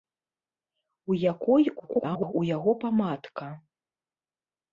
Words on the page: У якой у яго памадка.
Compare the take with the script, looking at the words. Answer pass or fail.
fail